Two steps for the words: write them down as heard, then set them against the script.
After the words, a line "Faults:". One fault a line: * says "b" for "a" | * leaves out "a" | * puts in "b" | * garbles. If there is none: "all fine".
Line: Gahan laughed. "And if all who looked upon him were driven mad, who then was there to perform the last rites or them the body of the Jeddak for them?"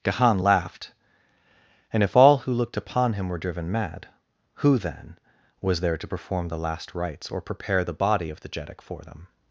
Gahan laughed. "And if all who looked upon him were driven mad, who then was there to perform the last rites or prepare the body of the Jeddak for them?"
Faults:
* says "prepare" for "them"